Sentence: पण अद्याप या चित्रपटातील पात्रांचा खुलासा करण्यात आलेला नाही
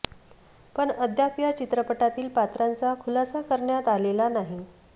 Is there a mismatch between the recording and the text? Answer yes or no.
no